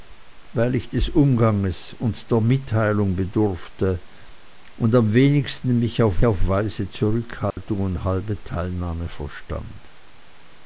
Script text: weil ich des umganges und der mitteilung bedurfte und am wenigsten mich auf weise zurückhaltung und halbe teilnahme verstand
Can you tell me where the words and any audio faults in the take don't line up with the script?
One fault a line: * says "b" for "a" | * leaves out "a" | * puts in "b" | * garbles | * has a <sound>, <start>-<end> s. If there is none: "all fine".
* puts in "auf"
* has a dropout, 7.5-7.6 s